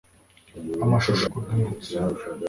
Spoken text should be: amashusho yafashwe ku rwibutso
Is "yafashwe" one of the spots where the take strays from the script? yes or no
yes